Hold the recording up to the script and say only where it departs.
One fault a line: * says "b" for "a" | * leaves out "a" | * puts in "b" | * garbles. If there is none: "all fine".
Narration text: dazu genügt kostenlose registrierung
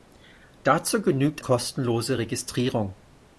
all fine